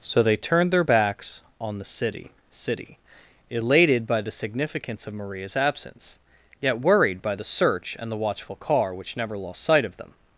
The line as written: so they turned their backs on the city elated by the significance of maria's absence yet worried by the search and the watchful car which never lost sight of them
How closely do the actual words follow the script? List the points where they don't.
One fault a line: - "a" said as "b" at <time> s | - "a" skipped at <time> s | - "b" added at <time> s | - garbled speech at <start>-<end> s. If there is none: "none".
- "city" added at 2.5 s